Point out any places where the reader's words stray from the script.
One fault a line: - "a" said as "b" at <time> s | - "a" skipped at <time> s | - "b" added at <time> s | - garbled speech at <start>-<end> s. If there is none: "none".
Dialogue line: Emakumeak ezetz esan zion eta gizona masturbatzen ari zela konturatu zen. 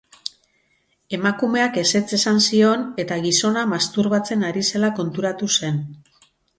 none